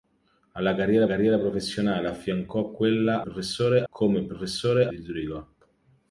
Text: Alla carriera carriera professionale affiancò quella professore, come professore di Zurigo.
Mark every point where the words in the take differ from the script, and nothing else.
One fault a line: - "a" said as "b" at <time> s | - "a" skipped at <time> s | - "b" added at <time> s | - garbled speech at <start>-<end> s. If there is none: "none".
none